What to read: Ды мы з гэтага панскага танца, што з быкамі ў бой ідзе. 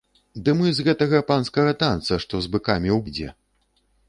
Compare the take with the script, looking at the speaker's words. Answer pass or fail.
fail